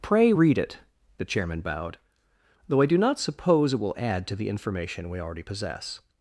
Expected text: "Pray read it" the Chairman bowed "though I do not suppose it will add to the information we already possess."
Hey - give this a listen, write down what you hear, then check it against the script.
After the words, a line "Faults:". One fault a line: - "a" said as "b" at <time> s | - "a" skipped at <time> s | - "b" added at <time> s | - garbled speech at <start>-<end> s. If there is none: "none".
"Pray read it" the Chairman bowed "though I do not suppose it will add to the information we already possess."
Faults:
none